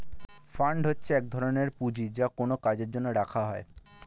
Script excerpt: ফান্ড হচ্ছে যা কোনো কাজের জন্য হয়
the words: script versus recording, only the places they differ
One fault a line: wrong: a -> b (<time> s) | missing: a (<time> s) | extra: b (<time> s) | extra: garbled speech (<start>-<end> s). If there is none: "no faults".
extra: এক ধরনের পুঁজি (1.1 s)
extra: রাখা (3.1 s)